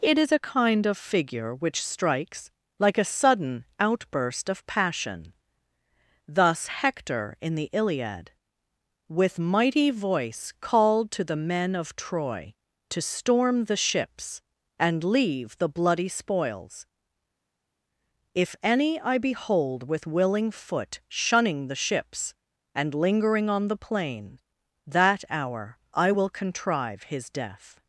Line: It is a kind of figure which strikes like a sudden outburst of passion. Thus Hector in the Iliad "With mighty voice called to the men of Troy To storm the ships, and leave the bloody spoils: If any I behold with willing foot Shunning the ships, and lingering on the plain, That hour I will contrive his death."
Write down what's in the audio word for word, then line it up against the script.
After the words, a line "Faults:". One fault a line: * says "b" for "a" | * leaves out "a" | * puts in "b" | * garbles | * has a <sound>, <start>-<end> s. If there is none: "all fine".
It is a kind of figure which strikes like a sudden outburst of passion. Thus Hector in the Iliad "With mighty voice called to the men of Troy To storm the ships, and leave the bloody spoils: If any I behold with willing foot Shunning the ships, and lingering on the plain, That hour I will contrive his death."
Faults:
all fine